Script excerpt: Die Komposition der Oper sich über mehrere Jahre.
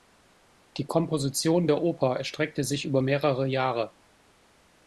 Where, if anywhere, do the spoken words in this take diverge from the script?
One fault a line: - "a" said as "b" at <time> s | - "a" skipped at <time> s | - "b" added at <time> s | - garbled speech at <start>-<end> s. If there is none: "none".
- "erstreckte" added at 2.2 s